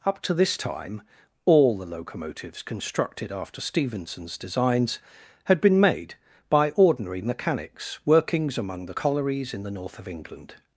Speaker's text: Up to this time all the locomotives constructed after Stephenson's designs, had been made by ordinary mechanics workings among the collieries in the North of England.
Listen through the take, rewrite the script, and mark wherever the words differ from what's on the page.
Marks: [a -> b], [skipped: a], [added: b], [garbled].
Up to this time all the locomotives constructed after Stephenson's designs, had been made by ordinary mechanics workings among the collieries in the North of England.